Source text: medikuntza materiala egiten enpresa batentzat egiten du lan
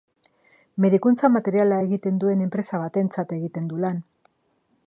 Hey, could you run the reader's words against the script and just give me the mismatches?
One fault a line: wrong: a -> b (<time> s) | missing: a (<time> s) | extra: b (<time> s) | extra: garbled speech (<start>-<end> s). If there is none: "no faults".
extra: duen (2.2 s)